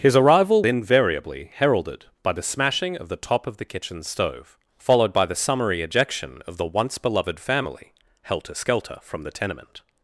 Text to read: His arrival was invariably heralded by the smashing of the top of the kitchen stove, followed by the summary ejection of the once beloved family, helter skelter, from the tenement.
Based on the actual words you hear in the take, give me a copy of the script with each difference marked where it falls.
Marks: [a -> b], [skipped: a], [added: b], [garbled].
His arrival [skipped: was] invariably heralded by the smashing of the top of the kitchen stove, followed by the summary ejection of the once beloved family, helter skelter, from the tenement.